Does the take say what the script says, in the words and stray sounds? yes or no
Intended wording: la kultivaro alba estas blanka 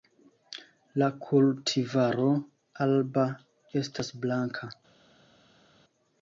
yes